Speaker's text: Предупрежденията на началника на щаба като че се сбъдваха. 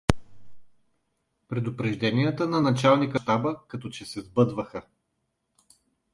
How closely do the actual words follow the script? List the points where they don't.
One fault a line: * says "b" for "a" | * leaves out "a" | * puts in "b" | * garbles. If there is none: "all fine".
* leaves out "на"